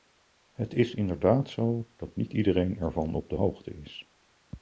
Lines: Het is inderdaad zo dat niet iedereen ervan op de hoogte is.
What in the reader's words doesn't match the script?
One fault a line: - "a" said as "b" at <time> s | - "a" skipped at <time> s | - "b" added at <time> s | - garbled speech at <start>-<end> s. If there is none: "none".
none